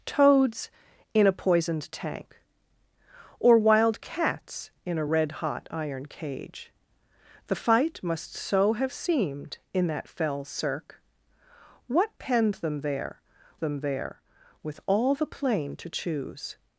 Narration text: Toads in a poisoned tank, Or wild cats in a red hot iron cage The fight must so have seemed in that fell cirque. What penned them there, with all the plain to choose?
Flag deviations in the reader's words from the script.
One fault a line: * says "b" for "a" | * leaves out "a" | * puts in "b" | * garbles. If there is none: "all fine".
* puts in "them there"